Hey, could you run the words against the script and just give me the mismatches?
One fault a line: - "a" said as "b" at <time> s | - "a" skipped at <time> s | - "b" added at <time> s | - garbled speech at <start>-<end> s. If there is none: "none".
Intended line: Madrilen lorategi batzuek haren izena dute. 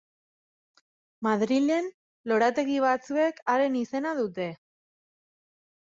none